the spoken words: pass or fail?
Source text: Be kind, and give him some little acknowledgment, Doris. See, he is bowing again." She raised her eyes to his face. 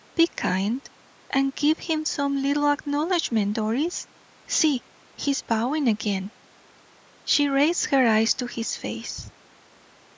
pass